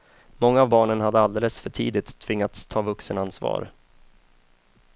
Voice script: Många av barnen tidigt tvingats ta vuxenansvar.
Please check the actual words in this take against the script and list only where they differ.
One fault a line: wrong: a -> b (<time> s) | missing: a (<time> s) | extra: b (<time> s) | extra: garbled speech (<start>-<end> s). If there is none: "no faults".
extra: hade alldeles för (1.0 s)